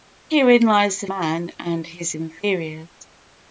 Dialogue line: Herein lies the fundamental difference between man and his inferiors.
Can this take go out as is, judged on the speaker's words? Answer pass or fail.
fail